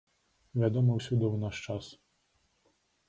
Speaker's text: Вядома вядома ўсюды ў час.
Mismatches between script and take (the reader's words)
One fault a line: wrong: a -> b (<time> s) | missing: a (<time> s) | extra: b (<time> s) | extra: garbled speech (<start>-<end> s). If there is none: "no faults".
missing: вядома (0.9 s)
extra: наш (1.4 s)